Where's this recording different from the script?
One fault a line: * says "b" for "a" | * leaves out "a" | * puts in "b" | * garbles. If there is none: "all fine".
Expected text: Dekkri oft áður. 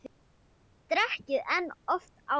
* puts in "en"